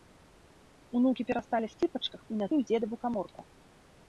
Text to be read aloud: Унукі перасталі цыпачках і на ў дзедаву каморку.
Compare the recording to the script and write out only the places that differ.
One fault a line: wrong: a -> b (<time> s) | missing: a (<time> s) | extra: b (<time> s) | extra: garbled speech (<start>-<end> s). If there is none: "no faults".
no faults